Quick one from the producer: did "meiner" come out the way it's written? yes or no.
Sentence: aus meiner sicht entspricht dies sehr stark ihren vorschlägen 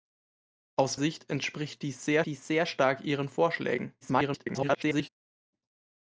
no